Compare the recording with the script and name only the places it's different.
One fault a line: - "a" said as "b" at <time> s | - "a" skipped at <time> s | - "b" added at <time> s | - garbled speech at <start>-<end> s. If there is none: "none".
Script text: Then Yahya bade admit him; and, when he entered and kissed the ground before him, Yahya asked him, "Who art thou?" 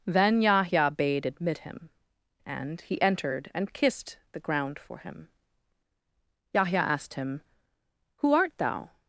- "when" skipped at 2.8 s
- "before" said as "for" at 4.8 s